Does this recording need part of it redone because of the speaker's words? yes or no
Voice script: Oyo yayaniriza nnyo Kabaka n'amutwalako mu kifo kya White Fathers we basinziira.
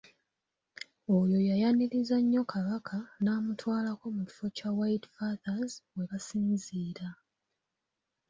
no